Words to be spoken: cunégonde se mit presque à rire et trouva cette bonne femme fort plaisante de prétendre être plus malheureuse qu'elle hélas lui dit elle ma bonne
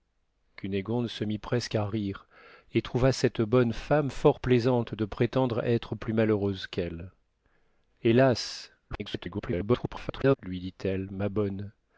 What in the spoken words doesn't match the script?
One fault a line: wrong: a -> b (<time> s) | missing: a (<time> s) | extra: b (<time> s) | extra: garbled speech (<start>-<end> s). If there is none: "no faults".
extra: garbled speech (8.9-10.4 s)